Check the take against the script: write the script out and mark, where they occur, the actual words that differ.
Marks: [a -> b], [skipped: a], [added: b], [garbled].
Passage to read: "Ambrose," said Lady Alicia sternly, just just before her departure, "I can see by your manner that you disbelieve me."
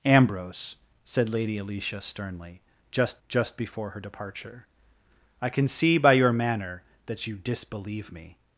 "Ambrose," said Lady Alicia sternly, just just before her departure, "I can see by your manner that you disbelieve me."